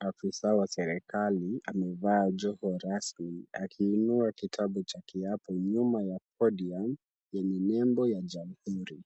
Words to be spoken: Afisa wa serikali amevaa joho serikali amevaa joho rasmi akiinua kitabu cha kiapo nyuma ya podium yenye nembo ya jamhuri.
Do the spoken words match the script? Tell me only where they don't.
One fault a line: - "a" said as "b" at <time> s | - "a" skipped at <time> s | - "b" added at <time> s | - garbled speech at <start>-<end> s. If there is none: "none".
- "serikali amevaa joho" skipped at 2.8 s